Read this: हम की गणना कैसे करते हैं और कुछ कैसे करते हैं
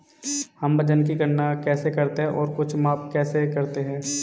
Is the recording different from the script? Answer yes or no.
yes